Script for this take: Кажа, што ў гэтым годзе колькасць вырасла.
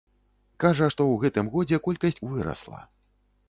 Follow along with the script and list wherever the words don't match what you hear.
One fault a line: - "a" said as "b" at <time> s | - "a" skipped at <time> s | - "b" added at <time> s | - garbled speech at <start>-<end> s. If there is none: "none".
none